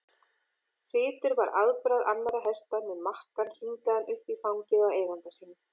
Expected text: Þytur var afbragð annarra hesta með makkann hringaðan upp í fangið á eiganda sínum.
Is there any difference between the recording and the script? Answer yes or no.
no